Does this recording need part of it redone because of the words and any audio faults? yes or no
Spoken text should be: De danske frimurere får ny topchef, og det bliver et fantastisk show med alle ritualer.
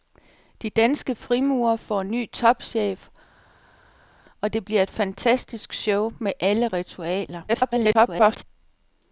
yes